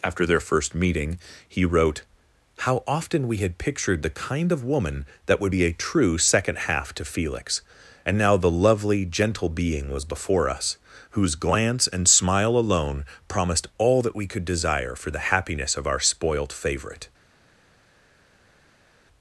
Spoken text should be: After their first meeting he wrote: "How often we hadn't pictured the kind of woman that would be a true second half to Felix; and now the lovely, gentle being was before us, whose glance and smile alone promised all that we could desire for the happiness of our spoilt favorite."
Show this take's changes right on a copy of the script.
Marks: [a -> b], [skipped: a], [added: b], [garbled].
After their first meeting he wrote: "How often we [hadn't -> had] pictured the kind of woman that would be a true second half to Felix; and now the lovely, gentle being was before us, whose glance and smile alone promised all that we could desire for the happiness of our spoilt favorite."